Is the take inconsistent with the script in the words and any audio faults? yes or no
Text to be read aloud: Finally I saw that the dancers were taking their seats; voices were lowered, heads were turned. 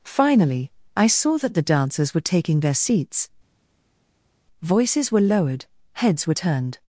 no